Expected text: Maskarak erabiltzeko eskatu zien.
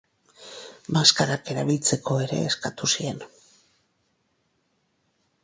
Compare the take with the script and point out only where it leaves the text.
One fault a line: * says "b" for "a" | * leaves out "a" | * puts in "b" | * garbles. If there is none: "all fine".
* puts in "ere"